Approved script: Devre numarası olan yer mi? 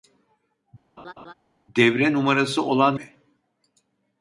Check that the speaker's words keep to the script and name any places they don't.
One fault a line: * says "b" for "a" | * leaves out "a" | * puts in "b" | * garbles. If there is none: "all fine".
* leaves out "yer"